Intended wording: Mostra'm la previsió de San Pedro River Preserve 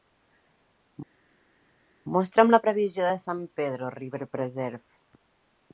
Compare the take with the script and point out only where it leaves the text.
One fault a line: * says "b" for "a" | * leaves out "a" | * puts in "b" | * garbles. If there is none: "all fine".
all fine